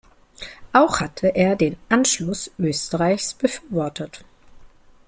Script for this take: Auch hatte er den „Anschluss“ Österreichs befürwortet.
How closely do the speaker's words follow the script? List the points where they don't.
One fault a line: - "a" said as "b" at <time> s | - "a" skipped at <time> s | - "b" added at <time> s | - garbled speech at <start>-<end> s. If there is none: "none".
none